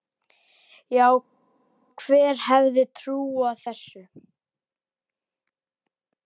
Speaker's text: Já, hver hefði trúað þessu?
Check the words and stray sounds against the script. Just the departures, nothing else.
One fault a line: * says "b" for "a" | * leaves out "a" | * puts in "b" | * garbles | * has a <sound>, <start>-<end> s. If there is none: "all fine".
all fine